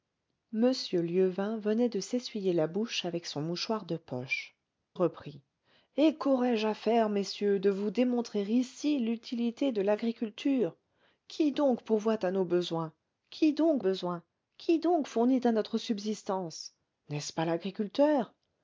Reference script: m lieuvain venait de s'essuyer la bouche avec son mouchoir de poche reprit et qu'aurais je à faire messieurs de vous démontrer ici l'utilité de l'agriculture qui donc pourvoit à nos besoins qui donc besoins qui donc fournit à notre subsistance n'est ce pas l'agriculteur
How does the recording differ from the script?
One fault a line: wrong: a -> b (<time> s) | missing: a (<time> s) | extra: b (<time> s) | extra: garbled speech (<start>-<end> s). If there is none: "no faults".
no faults